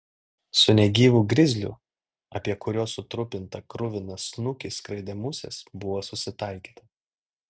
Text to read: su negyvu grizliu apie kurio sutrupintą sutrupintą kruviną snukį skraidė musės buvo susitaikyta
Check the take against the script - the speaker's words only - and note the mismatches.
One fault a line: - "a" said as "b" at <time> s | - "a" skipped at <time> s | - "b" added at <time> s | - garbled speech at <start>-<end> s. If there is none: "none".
- "sutrupintą" skipped at 3.6 s